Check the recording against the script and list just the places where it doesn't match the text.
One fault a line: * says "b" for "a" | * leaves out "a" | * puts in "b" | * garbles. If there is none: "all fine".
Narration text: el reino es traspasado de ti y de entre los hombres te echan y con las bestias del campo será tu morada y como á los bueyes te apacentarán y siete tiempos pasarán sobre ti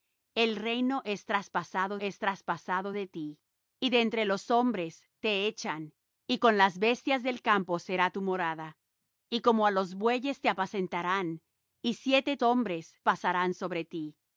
* puts in "es traspasado"
* says "hombres" for "tiempos"